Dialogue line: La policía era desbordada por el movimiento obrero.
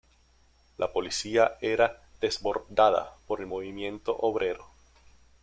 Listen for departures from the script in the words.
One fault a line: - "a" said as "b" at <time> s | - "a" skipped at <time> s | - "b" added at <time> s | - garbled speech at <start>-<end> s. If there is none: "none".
none